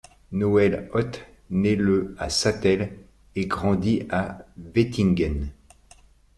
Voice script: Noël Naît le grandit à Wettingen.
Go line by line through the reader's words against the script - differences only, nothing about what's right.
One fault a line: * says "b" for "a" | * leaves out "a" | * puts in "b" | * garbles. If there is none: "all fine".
* puts in "Ott"
* puts in "à Sattel et"